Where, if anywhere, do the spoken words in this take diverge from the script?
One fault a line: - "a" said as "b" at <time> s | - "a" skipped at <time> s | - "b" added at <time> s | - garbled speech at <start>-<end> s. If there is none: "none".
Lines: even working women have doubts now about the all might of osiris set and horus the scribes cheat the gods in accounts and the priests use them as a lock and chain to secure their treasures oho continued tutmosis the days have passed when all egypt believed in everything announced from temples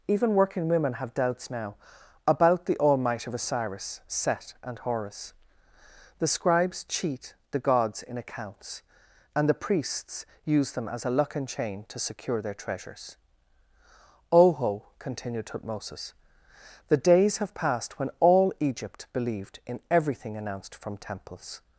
- "lock" said as "luck" at 11.1 s